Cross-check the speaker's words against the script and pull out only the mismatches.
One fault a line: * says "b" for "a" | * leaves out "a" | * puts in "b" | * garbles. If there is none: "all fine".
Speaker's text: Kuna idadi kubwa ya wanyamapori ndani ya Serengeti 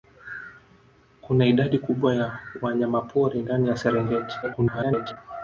* garbles